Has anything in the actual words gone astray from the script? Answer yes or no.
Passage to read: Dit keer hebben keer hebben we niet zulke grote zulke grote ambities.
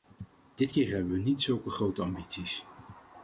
yes